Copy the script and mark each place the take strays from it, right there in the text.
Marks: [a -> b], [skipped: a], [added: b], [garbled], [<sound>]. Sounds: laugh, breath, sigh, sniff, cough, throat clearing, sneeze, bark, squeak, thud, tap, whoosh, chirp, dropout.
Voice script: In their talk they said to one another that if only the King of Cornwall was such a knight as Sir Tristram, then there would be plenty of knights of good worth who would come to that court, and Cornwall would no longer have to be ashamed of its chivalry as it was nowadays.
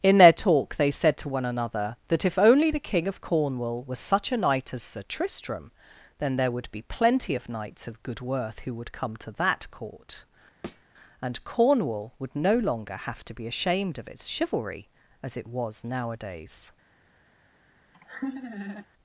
In their talk they said to one another that if only the King of Cornwall was such a knight as Sir Tristram, then there would be plenty of knights of good worth who would come to that court, [thud] and Cornwall would no longer have to be ashamed of its chivalry as it was nowadays. [laugh]